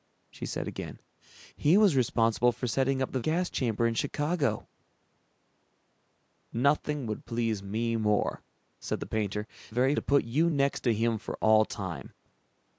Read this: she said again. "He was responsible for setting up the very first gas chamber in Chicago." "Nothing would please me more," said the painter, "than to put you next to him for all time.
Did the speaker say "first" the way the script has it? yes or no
no